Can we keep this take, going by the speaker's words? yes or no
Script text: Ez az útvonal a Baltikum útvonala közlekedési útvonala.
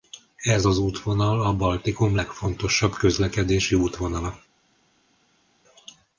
no